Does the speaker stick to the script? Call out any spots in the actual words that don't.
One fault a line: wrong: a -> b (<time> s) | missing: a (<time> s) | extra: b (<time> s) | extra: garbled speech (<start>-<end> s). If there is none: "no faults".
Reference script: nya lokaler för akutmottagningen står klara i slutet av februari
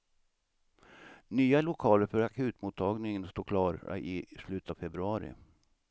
no faults